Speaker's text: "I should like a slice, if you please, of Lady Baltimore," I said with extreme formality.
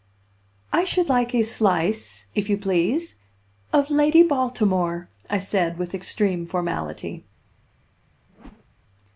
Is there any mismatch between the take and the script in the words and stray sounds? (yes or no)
yes